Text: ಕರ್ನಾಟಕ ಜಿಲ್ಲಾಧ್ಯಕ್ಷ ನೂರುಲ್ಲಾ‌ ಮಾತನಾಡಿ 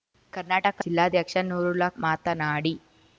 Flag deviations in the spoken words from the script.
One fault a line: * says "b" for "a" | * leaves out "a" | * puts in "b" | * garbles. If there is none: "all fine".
all fine